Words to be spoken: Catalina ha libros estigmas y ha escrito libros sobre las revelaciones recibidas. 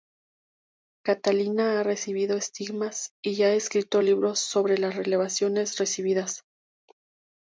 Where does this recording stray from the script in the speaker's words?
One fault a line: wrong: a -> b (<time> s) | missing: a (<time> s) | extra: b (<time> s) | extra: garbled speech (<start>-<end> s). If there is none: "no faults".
wrong: libros -> recibido (1.8 s)